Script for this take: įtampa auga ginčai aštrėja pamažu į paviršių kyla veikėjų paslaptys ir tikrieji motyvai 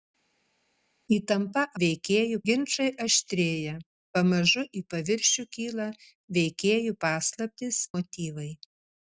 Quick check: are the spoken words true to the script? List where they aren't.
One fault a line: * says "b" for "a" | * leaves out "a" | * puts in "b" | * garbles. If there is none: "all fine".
* says "veikėjų" for "auga"
* leaves out "ir tikrieji"